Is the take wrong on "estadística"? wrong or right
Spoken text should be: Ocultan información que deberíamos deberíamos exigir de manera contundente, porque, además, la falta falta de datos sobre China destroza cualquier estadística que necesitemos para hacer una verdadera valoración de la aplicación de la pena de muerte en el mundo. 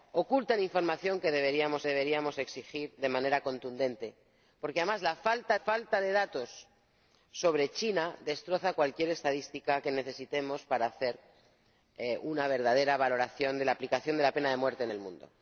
right